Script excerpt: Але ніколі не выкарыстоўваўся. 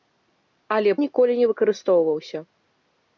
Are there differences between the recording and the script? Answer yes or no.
no